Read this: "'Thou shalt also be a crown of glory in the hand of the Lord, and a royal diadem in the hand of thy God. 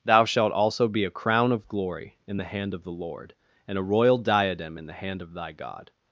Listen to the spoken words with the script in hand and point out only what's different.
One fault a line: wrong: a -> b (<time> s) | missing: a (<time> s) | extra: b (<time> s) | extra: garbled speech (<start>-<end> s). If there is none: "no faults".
no faults